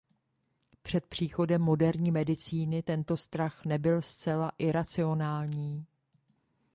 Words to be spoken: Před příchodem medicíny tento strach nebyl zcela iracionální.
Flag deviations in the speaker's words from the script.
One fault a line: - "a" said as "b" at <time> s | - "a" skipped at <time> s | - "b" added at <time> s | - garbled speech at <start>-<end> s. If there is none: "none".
- "moderní" added at 1.6 s